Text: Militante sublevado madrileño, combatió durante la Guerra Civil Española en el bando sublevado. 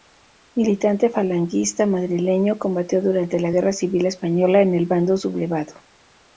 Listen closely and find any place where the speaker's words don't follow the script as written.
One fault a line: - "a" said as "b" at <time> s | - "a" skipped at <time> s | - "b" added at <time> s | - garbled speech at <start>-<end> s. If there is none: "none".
- "sublevado" said as "falangista" at 1.1 s